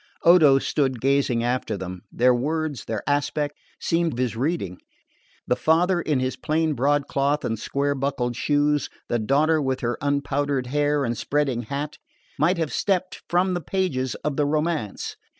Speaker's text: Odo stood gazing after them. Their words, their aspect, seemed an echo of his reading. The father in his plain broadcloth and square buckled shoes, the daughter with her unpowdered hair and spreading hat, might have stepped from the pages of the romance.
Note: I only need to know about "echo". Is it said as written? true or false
false